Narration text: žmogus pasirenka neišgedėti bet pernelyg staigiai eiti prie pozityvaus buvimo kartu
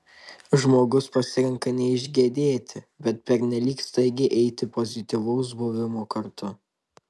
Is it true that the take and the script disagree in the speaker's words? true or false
true